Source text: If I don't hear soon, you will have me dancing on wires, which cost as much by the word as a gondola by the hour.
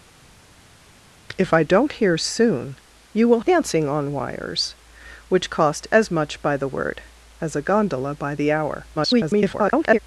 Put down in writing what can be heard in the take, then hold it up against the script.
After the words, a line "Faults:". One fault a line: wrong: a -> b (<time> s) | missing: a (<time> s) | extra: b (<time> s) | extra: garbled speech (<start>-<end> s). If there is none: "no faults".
If I don't hear soon, you will dancing on wires, which cost as much by the word as a gondola by the hour. [garbled]
Faults:
missing: have me (3.4 s)
extra: garbled speech (9.0-10.0 s)